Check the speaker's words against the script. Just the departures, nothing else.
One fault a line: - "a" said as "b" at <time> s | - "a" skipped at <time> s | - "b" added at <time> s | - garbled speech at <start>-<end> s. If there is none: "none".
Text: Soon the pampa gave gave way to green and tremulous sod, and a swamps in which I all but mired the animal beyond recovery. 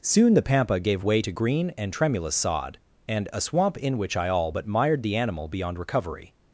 - "gave" skipped at 1.0 s
- "swamps" said as "swamp" at 3.4 s